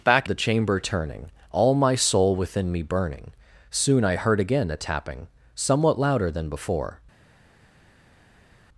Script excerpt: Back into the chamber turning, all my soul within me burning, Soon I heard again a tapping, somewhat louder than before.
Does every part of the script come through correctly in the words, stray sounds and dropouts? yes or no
no